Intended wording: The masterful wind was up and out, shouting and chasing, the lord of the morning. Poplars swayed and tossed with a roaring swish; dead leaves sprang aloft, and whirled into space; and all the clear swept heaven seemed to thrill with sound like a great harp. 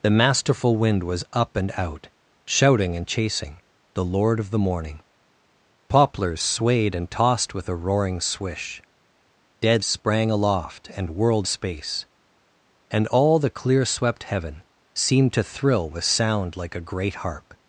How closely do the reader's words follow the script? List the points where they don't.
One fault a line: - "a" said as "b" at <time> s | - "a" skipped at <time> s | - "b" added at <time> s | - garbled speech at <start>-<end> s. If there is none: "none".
- "leaves" skipped at 9.8 s
- "into" skipped at 11.5 s